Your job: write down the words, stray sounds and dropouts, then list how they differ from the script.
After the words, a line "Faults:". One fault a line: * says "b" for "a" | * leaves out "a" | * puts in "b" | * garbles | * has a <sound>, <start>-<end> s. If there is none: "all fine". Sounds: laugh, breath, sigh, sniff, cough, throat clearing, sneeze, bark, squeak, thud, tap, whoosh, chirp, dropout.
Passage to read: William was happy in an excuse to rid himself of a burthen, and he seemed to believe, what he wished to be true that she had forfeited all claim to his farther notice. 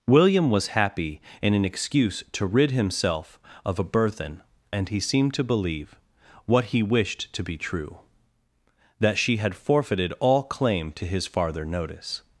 William was happy in an excuse to rid himself of a burthen, and he seemed to believe, what he wished to be true that she had forfeited all claim to his farther notice.
Faults:
all fine